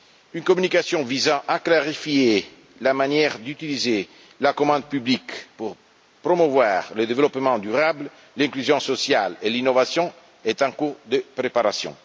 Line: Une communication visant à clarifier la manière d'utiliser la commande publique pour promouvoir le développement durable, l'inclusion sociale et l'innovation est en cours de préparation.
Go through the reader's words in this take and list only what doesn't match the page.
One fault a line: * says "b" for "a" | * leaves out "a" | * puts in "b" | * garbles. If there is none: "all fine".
all fine